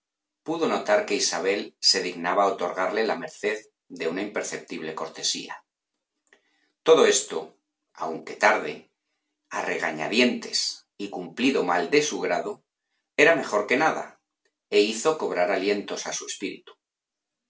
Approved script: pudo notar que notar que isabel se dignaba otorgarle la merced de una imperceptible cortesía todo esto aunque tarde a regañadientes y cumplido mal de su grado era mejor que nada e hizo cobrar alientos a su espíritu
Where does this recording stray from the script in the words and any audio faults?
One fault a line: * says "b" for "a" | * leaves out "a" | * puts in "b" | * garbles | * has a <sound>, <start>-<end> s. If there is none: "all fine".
* leaves out "notar que"